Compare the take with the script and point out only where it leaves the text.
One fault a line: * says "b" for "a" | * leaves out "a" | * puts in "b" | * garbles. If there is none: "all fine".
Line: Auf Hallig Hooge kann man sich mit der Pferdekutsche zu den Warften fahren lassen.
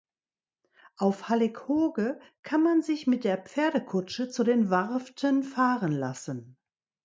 all fine